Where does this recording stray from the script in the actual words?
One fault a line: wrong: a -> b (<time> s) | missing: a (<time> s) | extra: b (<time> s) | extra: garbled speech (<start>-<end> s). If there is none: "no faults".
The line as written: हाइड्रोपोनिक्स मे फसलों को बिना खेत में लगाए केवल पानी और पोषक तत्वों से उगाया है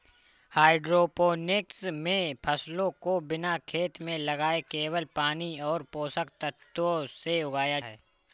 no faults